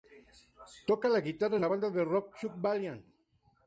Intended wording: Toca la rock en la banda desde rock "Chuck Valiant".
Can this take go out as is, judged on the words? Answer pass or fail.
fail